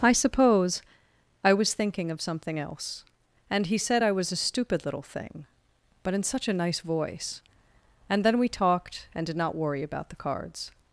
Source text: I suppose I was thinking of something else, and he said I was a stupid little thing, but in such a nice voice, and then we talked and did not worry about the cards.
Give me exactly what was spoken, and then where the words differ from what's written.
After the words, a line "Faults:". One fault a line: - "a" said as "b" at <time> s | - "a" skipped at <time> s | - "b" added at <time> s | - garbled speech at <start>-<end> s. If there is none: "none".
I suppose I was thinking of something else, and he said I was a stupid little thing, but in such a nice voice, and then we talked and did not worry about the cards.
Faults:
none